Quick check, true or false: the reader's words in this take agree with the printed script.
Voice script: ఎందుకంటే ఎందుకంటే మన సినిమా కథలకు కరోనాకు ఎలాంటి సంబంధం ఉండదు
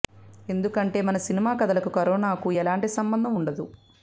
false